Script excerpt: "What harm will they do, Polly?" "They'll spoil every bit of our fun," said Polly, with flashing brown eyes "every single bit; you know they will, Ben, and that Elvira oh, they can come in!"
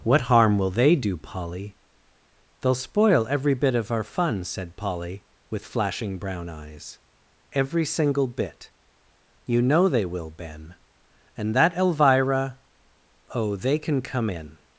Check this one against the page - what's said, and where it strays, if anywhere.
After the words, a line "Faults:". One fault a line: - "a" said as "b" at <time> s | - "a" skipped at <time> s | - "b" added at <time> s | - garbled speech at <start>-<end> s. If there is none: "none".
"What harm will they do, Polly?" "They'll spoil every bit of our fun," said Polly, with flashing brown eyes "every single bit; you know they will, Ben, and that Elvira oh, they can come in!"
Faults:
none